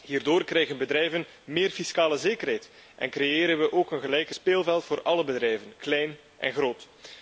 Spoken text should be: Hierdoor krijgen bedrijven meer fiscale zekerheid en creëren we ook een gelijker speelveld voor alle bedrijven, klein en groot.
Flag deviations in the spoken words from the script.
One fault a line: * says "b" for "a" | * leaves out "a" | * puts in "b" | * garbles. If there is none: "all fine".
all fine